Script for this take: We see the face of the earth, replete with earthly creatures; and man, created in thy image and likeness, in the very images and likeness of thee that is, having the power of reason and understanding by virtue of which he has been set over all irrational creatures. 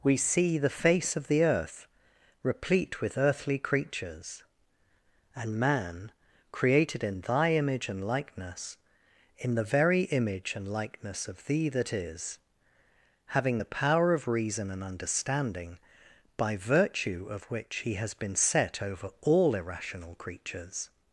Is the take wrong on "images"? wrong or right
wrong